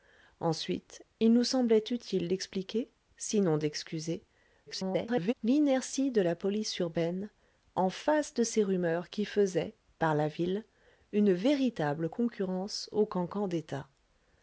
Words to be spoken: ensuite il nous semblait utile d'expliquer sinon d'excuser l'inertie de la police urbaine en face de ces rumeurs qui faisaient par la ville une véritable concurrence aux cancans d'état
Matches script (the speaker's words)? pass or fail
fail